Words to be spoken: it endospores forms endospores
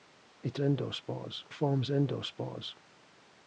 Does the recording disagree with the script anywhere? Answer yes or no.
no